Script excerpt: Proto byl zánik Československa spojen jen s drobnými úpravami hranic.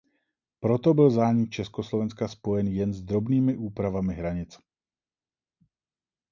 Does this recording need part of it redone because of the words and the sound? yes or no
no